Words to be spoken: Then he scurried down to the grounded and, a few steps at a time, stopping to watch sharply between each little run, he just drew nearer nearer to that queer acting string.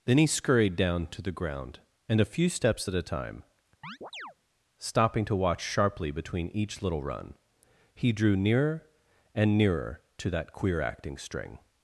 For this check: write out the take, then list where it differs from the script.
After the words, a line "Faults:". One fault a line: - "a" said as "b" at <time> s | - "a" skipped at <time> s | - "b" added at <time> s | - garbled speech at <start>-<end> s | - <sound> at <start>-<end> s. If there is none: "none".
Then he scurried down to the ground and, a few steps at a time, stopping to watch sharply between each little run, he drew nearer and nearer to that queer acting string.
Faults:
- "grounded" said as "ground" at 1.3 s
- chirp at 3.8-4.3 s
- "just" skipped at 8.1 s
- "and" added at 9.3 s